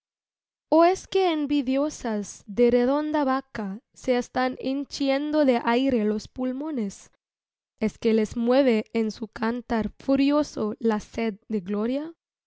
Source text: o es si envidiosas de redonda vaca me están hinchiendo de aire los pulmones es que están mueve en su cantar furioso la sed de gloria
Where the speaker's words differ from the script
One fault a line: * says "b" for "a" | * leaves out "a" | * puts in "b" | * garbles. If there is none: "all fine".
* says "que" for "si"
* says "se" for "me"
* says "les" for "están"